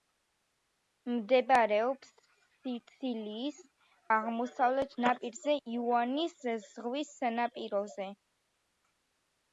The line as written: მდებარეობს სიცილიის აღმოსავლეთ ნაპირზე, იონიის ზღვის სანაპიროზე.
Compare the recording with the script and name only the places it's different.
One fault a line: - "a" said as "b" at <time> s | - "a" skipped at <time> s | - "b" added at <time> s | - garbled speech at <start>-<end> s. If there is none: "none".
none